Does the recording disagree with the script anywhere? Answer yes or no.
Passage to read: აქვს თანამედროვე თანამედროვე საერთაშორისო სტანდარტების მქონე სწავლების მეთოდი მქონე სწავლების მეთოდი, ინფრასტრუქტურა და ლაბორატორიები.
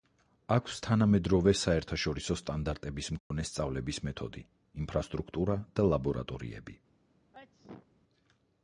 yes